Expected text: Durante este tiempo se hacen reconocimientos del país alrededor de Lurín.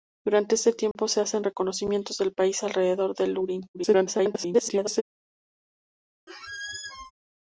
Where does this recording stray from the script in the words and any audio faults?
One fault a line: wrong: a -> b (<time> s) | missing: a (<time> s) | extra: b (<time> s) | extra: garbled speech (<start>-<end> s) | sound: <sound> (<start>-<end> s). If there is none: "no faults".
sound: dropout (0.9-1.0 s)
extra: garbled speech (3.7-5.0 s)
sound: squeak (6.3-7.1 s)